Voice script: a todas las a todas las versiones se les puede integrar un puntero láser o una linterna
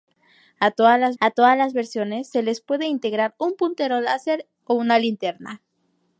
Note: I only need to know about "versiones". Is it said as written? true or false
true